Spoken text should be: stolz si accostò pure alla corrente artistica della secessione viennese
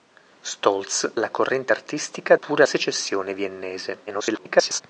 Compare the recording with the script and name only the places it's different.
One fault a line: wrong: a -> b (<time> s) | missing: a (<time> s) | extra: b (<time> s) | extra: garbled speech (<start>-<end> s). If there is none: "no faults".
missing: si accostò pure (1.1 s)
wrong: della -> pure (2.3 s)
extra: garbled speech (4.1-4.8 s)